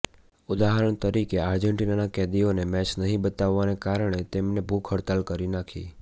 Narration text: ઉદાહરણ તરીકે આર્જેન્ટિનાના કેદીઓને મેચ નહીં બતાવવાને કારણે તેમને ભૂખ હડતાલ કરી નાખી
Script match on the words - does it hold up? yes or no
yes